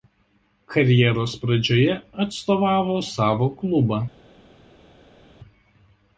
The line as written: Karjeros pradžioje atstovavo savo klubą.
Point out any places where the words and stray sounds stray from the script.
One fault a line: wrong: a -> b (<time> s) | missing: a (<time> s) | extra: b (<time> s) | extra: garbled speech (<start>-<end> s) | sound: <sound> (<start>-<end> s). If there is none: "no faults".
no faults